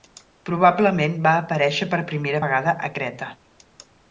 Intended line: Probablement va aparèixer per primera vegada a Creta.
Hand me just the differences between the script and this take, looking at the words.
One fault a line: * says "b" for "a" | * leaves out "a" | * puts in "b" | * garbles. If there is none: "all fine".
all fine